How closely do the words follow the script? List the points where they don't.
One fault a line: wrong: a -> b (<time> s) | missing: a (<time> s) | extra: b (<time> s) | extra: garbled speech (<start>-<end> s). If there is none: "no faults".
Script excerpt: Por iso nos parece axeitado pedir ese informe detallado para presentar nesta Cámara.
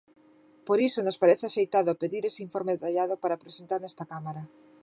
no faults